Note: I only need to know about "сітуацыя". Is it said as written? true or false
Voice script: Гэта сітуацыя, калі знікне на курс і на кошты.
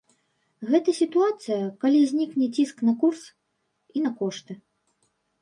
true